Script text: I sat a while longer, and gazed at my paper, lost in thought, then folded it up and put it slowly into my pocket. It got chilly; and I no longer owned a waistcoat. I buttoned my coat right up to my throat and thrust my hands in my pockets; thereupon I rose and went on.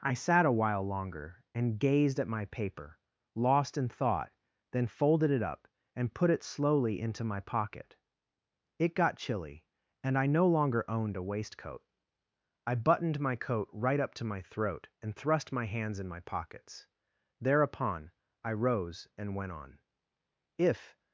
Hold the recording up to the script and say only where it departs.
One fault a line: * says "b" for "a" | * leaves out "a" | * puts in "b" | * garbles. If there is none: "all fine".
* puts in "If"